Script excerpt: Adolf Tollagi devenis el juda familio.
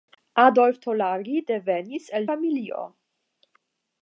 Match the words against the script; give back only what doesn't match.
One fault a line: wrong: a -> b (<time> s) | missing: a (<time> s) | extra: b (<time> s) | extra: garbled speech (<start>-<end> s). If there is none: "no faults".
missing: juda (2.3 s)